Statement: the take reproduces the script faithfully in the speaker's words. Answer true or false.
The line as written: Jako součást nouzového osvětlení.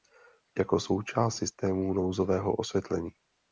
false